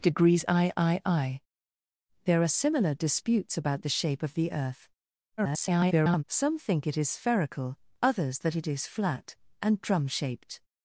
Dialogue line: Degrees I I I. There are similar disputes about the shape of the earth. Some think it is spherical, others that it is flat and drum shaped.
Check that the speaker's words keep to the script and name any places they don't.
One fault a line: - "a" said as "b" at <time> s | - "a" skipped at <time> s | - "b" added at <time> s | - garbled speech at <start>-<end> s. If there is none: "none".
- garbled speech at 5.4-6.2 s